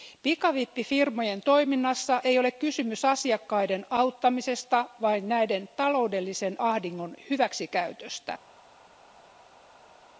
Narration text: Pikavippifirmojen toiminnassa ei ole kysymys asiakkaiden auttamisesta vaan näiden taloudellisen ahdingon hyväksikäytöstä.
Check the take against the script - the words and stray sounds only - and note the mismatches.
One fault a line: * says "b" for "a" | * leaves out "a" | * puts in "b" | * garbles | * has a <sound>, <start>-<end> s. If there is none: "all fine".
all fine